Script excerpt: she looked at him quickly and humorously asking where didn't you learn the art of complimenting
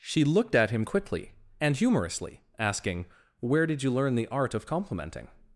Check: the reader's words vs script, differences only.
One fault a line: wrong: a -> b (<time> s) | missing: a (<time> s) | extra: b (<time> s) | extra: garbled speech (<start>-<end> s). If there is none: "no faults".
wrong: didn't -> did (3.7 s)